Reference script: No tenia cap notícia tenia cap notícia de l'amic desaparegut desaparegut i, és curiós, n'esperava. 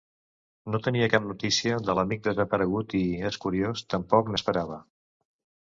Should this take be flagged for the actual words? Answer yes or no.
yes